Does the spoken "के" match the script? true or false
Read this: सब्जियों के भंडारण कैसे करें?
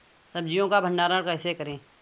false